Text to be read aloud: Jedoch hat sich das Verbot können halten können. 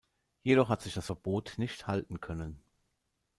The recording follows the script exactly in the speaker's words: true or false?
false